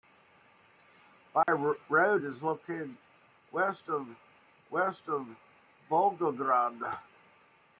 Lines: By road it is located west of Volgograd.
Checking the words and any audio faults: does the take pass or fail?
fail